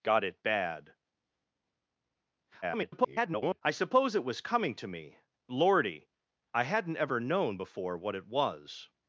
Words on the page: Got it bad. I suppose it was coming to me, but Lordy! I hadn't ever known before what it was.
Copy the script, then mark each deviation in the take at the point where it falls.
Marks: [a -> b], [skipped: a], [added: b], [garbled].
Got it bad. [garbled] I suppose it was coming to me, [skipped: but] Lordy! I hadn't ever known before what it was.